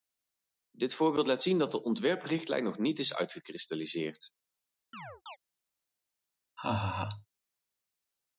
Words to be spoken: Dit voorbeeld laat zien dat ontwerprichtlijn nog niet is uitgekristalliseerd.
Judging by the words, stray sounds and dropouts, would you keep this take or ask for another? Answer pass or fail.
fail